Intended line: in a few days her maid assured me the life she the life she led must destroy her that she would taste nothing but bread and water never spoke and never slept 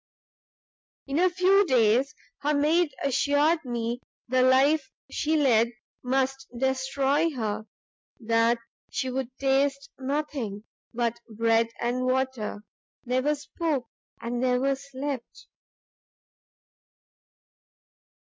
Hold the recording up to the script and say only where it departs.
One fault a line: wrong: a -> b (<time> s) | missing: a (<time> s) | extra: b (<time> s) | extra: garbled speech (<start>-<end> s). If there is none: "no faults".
missing: the life she (5.4 s)